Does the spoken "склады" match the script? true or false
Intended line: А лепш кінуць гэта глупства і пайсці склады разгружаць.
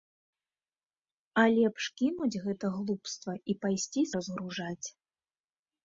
false